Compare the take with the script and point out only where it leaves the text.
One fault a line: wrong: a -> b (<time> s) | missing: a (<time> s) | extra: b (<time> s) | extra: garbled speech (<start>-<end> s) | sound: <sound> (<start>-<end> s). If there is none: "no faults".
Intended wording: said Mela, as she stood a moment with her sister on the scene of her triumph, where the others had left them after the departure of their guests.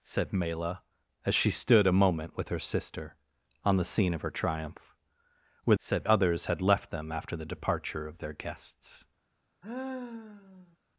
wrong: the -> said (5.8 s)
sound: sigh (9.6-10.8 s)